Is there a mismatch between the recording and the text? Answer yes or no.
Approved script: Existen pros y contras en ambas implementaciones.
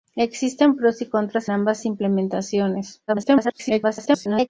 yes